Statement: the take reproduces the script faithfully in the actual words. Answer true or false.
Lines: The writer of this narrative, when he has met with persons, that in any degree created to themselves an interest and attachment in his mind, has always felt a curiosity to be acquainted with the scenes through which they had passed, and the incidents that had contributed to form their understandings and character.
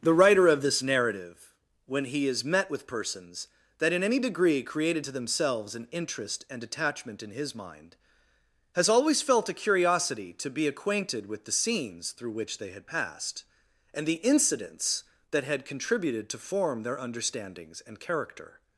false